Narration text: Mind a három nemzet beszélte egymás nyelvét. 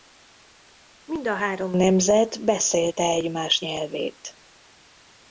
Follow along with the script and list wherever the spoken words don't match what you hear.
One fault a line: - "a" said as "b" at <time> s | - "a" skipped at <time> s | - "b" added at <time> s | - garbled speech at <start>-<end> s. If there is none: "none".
none